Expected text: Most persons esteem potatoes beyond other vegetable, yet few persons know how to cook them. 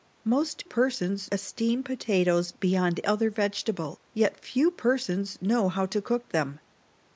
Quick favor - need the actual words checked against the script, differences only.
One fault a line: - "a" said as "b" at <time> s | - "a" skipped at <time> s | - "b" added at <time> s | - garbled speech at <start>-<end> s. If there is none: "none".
none